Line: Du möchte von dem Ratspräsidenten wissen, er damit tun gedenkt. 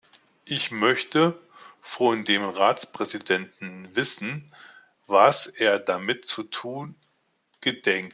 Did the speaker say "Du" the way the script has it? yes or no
no